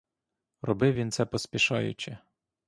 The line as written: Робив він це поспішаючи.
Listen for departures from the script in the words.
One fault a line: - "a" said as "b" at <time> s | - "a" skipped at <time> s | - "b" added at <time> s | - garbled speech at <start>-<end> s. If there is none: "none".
none